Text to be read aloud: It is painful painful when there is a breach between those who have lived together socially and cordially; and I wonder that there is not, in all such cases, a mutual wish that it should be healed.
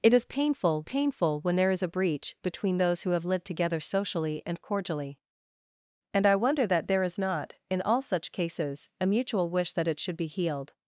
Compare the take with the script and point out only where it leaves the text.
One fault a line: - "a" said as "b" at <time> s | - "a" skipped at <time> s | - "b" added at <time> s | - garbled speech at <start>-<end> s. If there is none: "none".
none